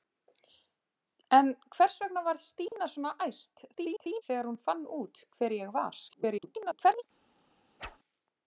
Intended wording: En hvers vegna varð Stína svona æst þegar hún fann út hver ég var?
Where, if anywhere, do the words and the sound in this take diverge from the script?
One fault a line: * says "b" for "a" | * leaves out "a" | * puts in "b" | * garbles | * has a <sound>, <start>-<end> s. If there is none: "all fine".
* has a dropout, 2.7-2.7 s
* garbles
* garbles
* has a whoosh, 7.8-8.0 s